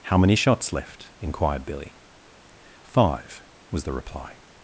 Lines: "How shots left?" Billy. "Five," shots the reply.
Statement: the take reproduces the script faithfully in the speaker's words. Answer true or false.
false